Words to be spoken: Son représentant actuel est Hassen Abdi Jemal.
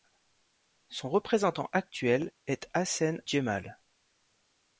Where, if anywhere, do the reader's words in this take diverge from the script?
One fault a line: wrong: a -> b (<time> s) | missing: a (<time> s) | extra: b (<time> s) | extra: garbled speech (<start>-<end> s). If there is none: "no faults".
missing: Abdi (3.2 s)